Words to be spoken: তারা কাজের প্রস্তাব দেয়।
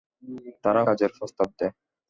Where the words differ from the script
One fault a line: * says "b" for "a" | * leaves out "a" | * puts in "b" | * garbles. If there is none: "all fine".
all fine